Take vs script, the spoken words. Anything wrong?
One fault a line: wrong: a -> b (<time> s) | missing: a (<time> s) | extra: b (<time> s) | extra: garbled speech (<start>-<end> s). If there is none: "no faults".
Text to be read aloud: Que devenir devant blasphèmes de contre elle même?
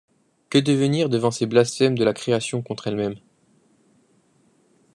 extra: ces (1.3 s)
extra: la création (2.0 s)